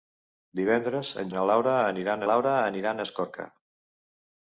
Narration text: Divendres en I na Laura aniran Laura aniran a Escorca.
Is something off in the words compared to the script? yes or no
no